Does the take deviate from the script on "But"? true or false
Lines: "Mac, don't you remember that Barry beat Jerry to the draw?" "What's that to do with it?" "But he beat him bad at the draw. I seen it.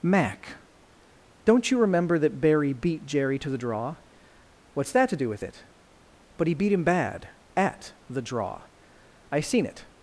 false